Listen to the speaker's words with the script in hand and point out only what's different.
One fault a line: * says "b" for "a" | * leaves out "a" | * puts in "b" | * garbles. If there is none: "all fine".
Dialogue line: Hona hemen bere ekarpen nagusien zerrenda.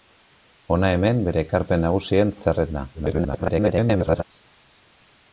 * garbles